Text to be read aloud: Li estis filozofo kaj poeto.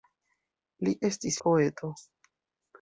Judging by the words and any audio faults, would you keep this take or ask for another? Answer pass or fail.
fail